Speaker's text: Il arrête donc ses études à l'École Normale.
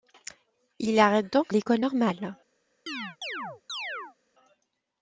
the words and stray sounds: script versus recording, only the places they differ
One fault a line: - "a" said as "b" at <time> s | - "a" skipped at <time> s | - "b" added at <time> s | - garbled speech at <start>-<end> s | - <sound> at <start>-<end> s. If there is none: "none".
- "ses études à" skipped at 1.5 s
- chirp at 2.9-4.2 s